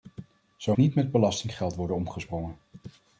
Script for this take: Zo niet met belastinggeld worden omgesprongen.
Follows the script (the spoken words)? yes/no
yes